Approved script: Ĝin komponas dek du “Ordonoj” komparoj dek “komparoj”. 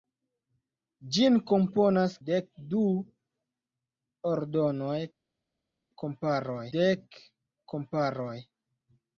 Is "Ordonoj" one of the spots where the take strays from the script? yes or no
no